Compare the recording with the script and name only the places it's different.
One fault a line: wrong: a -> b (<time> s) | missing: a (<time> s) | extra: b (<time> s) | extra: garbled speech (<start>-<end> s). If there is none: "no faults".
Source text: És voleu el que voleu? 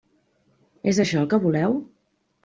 wrong: voleu -> això (1.0 s)